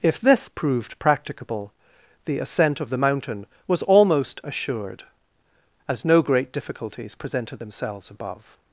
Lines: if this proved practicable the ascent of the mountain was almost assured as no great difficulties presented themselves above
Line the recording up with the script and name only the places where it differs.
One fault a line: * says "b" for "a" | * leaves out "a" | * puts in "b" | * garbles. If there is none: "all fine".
all fine